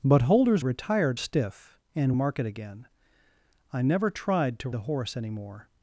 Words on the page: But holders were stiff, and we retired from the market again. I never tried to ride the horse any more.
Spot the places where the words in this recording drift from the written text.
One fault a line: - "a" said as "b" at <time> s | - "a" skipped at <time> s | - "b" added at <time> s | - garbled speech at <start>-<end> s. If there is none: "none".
- "were" said as "retired" at 0.6 s
- "we retired from" skipped at 2.1 s
- "ride" skipped at 4.7 s